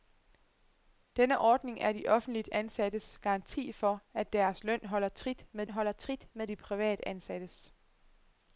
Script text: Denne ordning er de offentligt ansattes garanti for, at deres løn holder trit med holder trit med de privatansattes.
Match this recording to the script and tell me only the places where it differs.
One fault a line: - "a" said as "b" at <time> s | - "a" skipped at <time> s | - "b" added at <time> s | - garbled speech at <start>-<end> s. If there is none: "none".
none